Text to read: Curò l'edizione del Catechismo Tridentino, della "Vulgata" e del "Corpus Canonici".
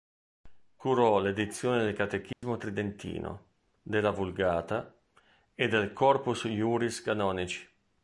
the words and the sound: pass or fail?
fail